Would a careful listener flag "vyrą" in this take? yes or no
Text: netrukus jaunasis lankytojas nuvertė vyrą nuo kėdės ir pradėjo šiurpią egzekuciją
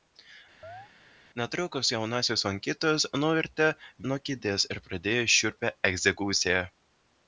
yes